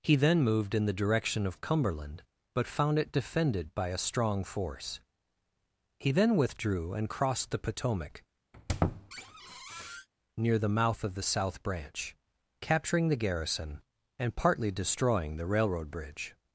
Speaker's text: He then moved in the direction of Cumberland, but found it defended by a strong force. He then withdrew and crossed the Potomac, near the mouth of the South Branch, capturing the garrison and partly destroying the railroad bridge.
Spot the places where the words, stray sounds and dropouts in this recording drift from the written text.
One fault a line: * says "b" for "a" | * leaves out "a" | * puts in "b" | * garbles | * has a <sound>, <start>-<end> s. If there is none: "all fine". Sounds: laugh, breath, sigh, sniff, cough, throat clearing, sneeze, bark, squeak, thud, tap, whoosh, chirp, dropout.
* has a squeak, 8.5-10.1 s